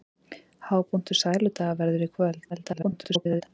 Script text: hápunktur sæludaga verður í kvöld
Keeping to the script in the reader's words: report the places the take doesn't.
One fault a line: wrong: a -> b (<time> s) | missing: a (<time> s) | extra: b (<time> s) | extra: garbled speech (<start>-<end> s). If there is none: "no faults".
extra: garbled speech (2.5-3.4 s)